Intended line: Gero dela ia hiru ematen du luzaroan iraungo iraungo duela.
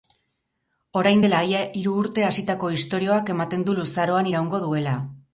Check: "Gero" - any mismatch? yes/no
yes